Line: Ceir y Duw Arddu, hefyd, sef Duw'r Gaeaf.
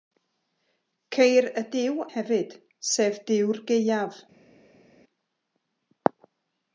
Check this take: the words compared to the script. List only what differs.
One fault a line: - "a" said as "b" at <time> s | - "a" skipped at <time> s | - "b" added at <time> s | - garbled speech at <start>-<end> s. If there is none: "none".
- "Arddu" skipped at 2.0 s